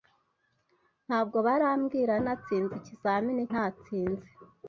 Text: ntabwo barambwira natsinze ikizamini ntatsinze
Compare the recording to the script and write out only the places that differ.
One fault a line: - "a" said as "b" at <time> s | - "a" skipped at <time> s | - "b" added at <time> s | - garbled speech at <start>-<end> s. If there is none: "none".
none